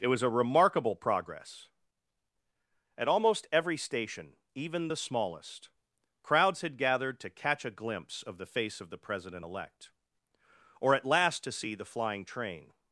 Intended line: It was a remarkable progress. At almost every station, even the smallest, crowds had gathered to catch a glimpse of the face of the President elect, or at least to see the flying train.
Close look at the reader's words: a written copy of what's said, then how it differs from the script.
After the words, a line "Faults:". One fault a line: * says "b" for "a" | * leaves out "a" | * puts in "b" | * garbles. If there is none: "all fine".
It was a remarkable progress. At almost every station, even the smallest, crowds had gathered to catch a glimpse of the face of the President elect, or at last to see the flying train.
Faults:
* says "last" for "least"